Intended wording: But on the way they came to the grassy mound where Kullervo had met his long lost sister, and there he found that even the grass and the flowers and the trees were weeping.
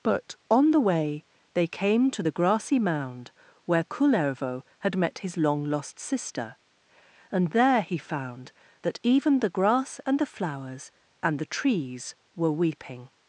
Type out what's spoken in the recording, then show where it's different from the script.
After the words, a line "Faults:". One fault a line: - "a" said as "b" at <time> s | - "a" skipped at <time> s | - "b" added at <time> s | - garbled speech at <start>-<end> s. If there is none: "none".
But on the way they came to the grassy mound where Kullervo had met his long lost sister, and there he found that even the grass and the flowers and the trees were weeping.
Faults:
none